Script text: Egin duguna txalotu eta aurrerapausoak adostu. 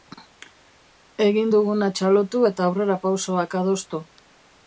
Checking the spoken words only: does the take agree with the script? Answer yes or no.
yes